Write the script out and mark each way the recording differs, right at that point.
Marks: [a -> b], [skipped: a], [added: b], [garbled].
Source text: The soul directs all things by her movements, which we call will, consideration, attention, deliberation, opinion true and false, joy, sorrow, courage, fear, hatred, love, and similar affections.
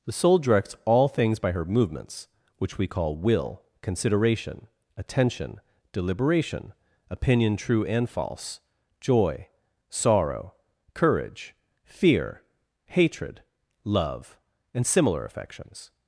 The soul directs all things by her movements, which we call will, consideration, attention, deliberation, opinion true and false, joy, sorrow, courage, fear, hatred, love, and similar affections.